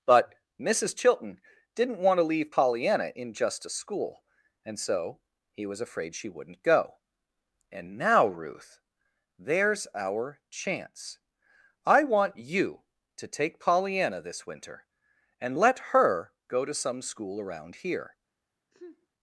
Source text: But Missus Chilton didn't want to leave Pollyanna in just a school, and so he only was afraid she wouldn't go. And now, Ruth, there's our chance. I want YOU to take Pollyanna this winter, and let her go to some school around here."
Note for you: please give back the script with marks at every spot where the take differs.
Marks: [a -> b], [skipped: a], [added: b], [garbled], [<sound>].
But Missus Chilton didn't want to leave Pollyanna in just a school, and so he [skipped: only] was afraid she wouldn't go. And now, Ruth, there's our chance. I want YOU to take Pollyanna this winter, and let her go to some school around here." [sneeze]